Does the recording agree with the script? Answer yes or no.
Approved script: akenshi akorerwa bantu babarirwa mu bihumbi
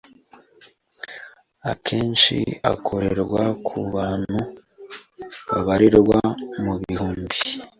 no